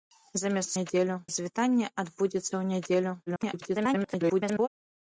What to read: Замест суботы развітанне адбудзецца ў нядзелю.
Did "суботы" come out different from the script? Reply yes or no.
yes